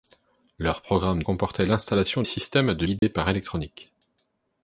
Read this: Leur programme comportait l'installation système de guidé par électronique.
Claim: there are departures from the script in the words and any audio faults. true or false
true